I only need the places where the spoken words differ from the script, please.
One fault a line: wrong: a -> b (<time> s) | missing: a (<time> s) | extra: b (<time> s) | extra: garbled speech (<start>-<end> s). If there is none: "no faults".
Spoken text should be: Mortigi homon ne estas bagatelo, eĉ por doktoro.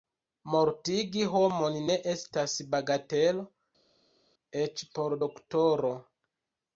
no faults